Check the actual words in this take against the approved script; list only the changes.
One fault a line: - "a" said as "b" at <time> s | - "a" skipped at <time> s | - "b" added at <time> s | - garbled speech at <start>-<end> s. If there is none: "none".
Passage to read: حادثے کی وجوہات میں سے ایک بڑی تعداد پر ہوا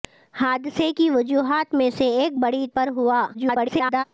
- "تعداد" skipped at 2.7 s
- garbled speech at 3.3-4.0 s